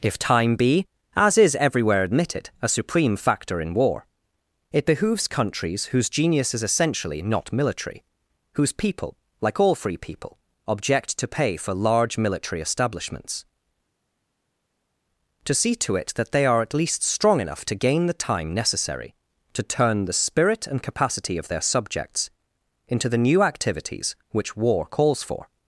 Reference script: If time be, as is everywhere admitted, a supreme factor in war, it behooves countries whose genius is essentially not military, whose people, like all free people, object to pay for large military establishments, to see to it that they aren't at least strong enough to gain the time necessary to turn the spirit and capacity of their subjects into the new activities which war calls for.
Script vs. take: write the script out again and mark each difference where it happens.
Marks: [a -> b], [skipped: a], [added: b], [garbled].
If time be, as is everywhere admitted, a supreme factor in war, it behooves countries whose genius is essentially not military, whose people, like all free people, object to pay for large military establishments, to see to it that they [aren't -> are] at least strong enough to gain the time necessary to turn the spirit and capacity of their subjects into the new activities which war calls for.